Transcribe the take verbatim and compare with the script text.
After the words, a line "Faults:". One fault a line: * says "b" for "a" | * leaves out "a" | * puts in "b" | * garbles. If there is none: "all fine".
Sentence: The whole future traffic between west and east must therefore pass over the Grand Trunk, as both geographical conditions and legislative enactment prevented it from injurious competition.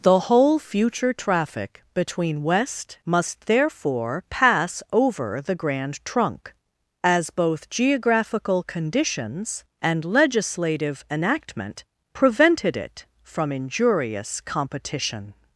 The whole future traffic between west must therefore pass over the Grand Trunk, as both geographical conditions and legislative enactment prevented it from injurious competition.
Faults:
* leaves out "and east"